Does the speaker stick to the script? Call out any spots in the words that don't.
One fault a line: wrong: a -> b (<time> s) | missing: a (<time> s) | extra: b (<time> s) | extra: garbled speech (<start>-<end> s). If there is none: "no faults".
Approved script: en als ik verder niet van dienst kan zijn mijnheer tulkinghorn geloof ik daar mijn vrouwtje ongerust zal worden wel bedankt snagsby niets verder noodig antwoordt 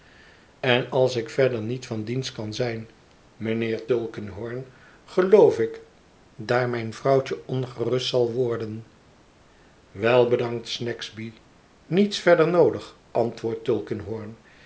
no faults